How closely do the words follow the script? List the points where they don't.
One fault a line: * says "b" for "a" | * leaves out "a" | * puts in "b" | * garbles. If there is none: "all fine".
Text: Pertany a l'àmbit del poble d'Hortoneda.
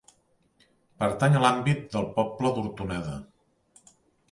all fine